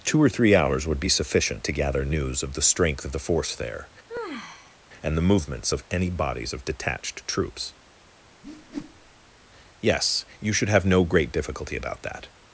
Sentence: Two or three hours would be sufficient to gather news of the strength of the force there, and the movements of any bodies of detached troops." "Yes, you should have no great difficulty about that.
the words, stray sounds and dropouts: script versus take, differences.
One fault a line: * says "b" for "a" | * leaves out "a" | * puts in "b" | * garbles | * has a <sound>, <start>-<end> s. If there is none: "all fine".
* has a sigh, 4.1-4.8 s
* has a whoosh, 8.4-9.2 s